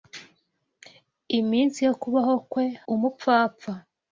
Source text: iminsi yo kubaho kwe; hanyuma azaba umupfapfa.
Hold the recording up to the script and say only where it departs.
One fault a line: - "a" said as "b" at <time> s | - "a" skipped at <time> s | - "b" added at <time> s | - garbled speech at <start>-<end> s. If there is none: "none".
- "hanyuma azaba" skipped at 2.6 s